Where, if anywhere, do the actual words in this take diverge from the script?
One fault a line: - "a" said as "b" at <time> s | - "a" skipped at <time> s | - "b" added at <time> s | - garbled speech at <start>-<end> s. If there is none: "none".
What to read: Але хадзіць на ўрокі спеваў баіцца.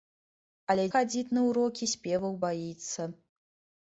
none